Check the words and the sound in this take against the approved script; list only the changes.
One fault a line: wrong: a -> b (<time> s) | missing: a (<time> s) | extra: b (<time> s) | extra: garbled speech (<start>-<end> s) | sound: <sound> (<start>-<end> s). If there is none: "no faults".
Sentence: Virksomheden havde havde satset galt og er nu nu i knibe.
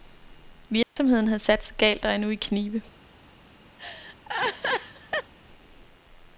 sound: dropout (0.8-1.0 s)
missing: havde (1.4 s)
missing: nu (2.3 s)
sound: laugh (3.8-5.3 s)